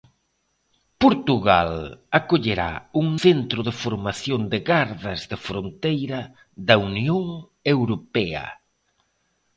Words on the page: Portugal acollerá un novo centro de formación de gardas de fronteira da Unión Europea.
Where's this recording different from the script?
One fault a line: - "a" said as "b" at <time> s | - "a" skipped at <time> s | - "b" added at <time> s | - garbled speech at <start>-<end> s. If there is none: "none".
- "novo" skipped at 3.1 s